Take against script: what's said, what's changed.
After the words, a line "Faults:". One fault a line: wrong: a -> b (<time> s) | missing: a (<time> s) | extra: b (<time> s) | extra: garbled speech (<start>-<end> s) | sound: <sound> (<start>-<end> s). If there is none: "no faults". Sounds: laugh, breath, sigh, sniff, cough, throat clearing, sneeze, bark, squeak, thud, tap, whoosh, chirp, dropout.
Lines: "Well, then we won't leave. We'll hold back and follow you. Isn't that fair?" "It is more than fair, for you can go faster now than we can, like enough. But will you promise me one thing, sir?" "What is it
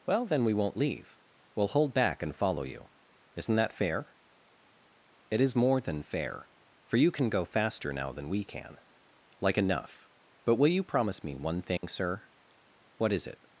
"Well, then we won't leave. We'll hold back and follow you. Isn't that fair?" "It is more than fair, for you can go faster now than we can, like enough. But will you promise me one thing, sir?" "What is it
Faults:
sound: dropout (11.8-11.8 s)